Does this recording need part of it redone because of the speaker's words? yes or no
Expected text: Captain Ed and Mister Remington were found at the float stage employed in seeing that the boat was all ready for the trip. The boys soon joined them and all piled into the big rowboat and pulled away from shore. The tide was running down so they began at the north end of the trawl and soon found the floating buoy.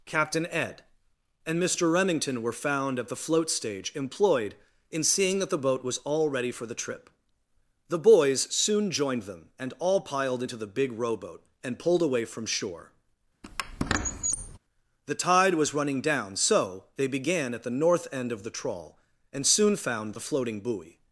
no